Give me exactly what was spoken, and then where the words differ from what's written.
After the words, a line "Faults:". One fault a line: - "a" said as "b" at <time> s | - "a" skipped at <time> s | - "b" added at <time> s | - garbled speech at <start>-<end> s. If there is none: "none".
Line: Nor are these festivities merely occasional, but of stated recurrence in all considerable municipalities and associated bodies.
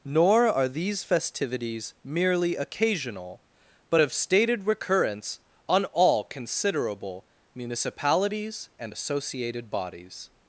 Nor are these festivities merely occasional, but of stated recurrence on all considerable municipalities and associated bodies.
Faults:
- "in" said as "on" at 5.7 s